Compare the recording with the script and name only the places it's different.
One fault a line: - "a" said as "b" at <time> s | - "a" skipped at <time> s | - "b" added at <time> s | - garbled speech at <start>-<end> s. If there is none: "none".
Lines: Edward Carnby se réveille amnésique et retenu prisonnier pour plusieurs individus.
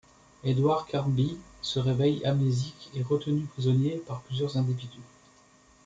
- "pour" said as "par" at 4.0 s